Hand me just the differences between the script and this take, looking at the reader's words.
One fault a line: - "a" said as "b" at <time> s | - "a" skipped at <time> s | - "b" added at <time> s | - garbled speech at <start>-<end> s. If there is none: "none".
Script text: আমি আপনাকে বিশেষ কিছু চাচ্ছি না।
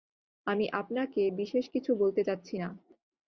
- "বলতে" added at 2.0 s